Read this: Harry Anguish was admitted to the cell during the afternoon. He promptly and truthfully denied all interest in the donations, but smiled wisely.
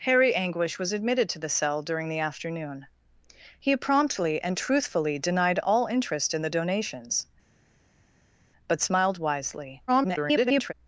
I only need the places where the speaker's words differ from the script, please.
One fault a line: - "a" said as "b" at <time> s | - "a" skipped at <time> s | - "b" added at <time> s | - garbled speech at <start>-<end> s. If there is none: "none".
- garbled speech at 9.9-10.7 s